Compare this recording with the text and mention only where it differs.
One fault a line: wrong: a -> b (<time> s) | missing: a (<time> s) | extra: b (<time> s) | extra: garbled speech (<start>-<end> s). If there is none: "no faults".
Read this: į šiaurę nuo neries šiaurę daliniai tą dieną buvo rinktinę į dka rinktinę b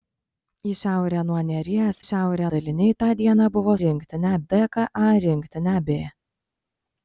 no faults